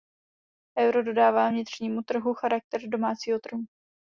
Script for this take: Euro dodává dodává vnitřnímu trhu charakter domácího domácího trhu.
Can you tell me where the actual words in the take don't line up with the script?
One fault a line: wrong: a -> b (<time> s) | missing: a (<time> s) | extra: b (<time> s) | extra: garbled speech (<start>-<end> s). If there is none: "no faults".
missing: dodává (1.5 s)
missing: domácího (3.4 s)